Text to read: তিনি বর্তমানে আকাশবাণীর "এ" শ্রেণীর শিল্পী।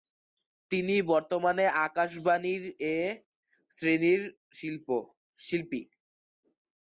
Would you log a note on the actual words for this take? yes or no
no